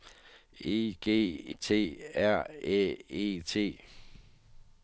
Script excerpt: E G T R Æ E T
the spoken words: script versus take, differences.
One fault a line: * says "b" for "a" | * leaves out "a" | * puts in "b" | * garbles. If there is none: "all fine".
all fine